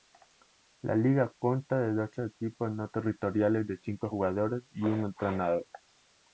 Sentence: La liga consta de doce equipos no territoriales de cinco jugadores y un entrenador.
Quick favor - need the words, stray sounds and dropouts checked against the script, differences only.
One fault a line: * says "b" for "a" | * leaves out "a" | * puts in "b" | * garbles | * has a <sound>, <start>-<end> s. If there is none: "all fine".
all fine